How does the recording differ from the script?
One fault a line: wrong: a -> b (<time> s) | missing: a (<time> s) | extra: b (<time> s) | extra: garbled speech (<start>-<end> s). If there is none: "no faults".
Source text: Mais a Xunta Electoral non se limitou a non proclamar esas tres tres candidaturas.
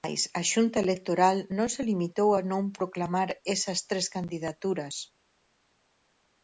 missing: tres (4.1 s)